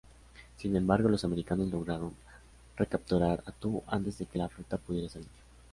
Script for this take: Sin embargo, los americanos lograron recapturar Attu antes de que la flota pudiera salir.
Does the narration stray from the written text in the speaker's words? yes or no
no